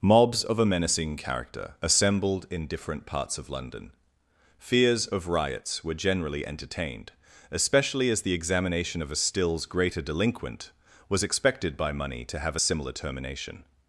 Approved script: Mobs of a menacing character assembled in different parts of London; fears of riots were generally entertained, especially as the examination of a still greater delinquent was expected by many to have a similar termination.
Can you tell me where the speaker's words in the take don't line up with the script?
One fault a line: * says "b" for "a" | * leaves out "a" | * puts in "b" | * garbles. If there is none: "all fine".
* says "stills" for "still"
* says "money" for "many"